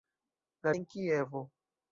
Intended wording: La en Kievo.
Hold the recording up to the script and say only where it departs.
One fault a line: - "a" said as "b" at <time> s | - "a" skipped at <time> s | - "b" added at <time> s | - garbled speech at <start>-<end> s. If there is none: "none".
none